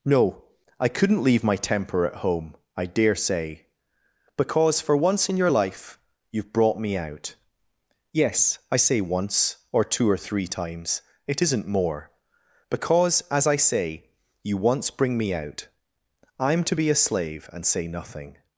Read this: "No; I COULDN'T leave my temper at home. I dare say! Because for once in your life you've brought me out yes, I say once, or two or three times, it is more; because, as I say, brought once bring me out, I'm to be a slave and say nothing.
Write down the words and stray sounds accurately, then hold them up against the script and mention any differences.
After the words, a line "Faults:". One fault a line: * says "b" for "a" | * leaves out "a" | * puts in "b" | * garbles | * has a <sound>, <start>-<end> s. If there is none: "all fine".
"No; I COULDN'T leave my temper at home. I dare say! Because for once in your life you've brought me out yes, I say once, or two or three times, it isn't more; because, as I say, you once bring me out, I'm to be a slave and say nothing.
Faults:
* says "isn't" for "is"
* says "you" for "brought"